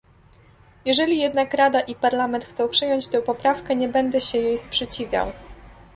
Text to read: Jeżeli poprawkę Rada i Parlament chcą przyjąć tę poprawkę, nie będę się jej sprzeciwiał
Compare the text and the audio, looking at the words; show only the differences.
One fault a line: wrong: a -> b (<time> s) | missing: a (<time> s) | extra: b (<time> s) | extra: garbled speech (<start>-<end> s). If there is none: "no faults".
wrong: poprawkę -> jednak (1.2 s)